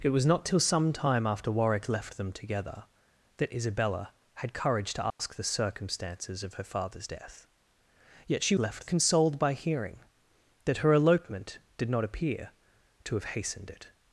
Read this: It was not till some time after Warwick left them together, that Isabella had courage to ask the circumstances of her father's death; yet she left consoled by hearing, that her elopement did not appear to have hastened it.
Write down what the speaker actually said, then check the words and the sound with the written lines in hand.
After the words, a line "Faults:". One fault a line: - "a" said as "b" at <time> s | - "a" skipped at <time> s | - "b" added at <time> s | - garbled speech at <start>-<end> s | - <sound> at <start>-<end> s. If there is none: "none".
It was not till some time after Warwick left them together, that Isabella had courage to ask the circumstances of her father's death; yet she left consoled by hearing, that her elopement did not appear to have hastened it.
Faults:
- dropout at 5.1-5.2 s